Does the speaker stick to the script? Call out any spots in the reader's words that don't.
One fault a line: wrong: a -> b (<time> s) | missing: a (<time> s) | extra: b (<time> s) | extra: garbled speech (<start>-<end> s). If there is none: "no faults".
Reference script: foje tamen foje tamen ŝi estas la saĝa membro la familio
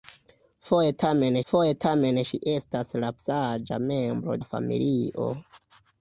no faults